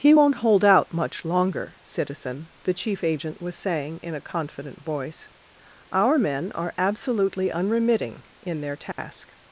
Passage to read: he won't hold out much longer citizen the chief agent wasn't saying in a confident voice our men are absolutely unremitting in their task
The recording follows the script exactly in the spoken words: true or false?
false